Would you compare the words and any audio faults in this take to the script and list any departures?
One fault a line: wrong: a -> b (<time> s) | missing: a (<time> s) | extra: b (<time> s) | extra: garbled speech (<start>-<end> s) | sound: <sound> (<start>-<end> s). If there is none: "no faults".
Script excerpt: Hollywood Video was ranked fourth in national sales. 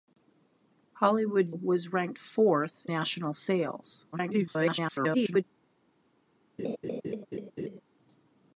missing: Video (1.5 s)
missing: in (2.9 s)
extra: garbled speech (4.1-5.4 s)
sound: laugh (6.6-7.8 s)